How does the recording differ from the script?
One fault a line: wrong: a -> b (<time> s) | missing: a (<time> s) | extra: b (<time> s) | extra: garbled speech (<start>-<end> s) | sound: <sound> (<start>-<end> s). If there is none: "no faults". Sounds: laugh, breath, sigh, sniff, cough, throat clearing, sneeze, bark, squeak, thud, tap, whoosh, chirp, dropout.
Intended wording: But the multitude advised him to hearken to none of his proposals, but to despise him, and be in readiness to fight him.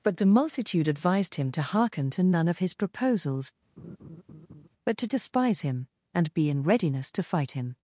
sound: laugh (3.8-4.7 s)